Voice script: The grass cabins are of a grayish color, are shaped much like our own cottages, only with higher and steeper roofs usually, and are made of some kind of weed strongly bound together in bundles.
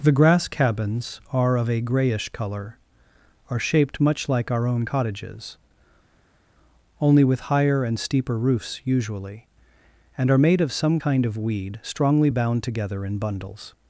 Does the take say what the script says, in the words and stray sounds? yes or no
yes